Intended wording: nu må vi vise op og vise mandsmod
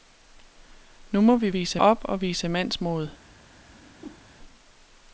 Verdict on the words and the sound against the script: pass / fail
fail